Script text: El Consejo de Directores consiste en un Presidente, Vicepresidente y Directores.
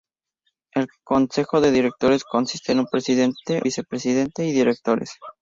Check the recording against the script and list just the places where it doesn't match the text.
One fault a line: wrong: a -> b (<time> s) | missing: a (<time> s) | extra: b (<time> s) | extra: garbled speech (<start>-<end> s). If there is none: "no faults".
no faults